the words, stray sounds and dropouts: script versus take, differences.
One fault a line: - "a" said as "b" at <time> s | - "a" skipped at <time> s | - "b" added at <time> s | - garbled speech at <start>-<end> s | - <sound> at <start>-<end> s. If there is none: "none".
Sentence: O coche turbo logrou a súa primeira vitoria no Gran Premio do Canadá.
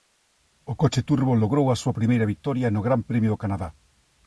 none